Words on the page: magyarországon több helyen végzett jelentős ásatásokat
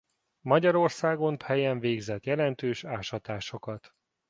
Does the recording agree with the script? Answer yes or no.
no